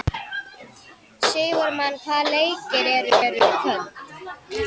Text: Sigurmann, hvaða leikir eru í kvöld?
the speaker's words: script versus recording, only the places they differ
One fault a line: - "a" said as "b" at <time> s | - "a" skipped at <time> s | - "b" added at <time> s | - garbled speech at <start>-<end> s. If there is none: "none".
- "eru" added at 3.3 s